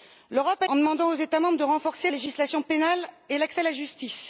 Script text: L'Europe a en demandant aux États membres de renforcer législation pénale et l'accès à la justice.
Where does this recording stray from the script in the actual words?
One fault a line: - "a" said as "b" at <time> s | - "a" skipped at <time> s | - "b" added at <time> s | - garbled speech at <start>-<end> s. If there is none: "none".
none